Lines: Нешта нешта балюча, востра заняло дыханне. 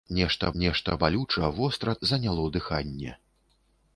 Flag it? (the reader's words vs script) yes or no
no